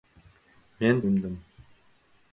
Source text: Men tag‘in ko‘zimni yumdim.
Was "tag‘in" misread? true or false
true